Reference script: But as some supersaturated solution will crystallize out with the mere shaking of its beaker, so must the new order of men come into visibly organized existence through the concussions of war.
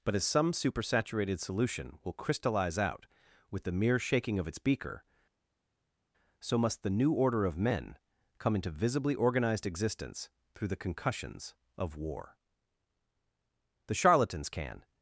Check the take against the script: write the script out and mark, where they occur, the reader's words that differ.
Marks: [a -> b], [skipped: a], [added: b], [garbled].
But as some supersaturated solution will crystallize out with the mere shaking of its beaker, so must the new order of men come into visibly organized existence through the concussions of war. [added: The charlatans can]